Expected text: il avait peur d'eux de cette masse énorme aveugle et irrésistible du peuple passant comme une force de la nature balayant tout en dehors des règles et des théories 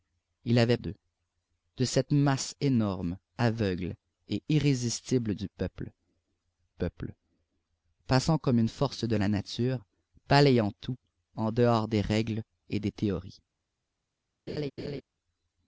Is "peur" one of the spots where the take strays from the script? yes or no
yes